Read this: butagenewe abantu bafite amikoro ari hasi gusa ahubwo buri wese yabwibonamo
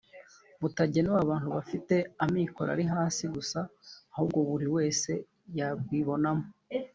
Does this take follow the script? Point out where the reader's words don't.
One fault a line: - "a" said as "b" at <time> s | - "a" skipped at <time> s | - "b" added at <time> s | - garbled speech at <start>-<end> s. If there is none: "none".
none